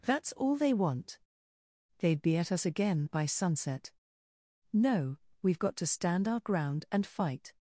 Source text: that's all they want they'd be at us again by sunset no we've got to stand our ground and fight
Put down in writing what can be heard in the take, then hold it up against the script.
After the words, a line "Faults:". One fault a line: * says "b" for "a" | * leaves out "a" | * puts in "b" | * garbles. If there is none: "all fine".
that's all they want they'd be at us again by sunset no we've got to stand our ground and fight
Faults:
all fine